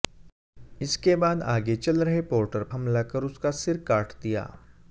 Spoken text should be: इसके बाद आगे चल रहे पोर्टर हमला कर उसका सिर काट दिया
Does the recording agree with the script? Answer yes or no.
yes